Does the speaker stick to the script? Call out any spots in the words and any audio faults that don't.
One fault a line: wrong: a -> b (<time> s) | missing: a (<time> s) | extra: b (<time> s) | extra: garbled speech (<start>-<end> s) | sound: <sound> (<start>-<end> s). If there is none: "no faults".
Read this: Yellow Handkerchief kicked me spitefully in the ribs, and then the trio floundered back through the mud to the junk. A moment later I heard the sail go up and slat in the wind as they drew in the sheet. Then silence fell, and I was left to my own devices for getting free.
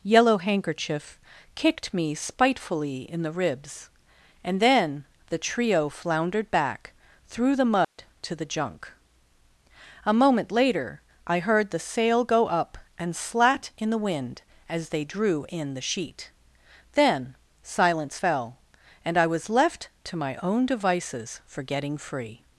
sound: dropout (7.8-8.0 s)